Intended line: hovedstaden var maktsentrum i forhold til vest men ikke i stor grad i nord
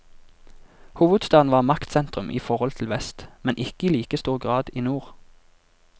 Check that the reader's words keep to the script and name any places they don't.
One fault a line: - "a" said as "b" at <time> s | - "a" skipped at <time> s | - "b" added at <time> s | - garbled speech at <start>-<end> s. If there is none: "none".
- "like" added at 3.9 s